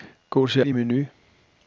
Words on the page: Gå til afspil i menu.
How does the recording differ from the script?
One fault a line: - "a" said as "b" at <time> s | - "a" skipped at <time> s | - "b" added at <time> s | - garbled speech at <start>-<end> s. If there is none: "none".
- "afspil" skipped at 0.6 s